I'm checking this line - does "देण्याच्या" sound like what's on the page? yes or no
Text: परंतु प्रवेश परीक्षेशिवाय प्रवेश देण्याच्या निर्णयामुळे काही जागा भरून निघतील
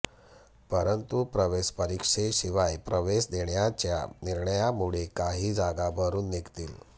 yes